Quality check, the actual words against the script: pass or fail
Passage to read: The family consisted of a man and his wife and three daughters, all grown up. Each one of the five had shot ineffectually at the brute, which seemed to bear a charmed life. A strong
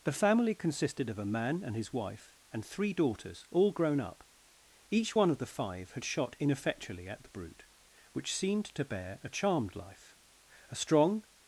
pass